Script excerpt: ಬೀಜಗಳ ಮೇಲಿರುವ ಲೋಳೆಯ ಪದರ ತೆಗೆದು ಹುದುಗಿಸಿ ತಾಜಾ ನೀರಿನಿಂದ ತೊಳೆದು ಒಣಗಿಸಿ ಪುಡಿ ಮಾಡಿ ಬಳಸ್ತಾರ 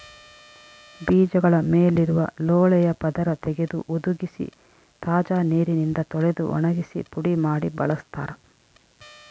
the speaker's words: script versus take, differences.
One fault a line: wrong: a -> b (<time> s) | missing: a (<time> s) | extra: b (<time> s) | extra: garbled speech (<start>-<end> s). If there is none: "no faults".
no faults